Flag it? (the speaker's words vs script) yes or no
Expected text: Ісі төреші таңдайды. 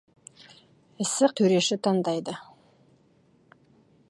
no